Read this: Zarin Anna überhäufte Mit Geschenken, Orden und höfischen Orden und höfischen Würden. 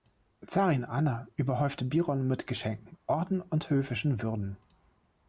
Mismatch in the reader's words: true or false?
true